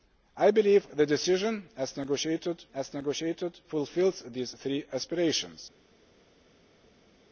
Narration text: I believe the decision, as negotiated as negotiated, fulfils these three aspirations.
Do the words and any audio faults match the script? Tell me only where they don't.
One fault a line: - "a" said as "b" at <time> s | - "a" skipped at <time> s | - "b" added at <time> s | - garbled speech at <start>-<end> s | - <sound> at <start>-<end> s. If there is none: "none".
none